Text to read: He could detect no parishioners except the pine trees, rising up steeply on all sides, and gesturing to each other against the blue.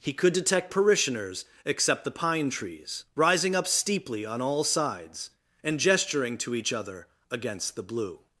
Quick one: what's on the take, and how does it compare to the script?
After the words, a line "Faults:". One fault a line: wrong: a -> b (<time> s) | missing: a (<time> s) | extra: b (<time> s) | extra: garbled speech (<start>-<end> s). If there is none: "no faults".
He could detect parishioners except the pine trees, rising up steeply on all sides, and gesturing to each other against the blue.
Faults:
missing: no (0.7 s)